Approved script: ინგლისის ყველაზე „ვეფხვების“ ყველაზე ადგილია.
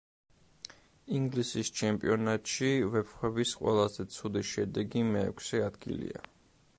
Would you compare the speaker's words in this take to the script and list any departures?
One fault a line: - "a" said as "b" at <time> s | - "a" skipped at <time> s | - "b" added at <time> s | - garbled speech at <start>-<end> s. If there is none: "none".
- "ყველაზე" said as "ჩემპიონატში" at 1.8 s
- "ცუდი შედეგი მეექვსე" added at 4.2 s